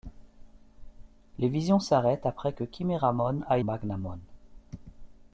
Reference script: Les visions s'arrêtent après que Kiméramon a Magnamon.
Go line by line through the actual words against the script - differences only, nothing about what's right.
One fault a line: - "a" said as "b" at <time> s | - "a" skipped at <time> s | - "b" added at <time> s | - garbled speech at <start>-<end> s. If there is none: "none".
none